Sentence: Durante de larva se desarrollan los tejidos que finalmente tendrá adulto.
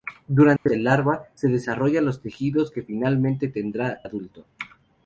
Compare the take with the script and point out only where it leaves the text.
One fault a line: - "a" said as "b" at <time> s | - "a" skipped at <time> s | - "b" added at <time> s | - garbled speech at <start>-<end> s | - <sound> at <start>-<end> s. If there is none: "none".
- dropout at 0.6-0.7 s